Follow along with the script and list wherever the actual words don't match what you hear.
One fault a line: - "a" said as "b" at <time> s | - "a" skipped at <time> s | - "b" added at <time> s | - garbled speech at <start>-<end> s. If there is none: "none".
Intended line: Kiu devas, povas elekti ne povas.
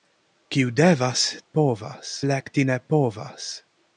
none